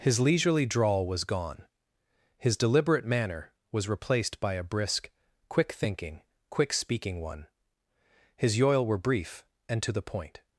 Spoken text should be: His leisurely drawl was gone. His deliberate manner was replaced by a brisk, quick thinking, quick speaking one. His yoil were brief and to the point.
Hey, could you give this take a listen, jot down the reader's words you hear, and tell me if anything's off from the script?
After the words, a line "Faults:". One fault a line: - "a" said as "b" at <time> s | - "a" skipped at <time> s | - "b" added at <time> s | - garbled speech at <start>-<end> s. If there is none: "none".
His leisurely drawl was gone. His deliberate manner was replaced by a brisk, quick thinking, quick speaking one. His yoil were brief and to the point.
Faults:
none